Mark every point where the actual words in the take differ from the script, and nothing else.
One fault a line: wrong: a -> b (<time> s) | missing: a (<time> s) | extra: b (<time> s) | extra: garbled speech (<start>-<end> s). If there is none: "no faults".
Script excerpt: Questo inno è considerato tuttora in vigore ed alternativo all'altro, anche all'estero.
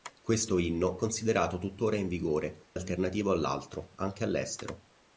missing: è (1.0 s)
missing: ed (2.7 s)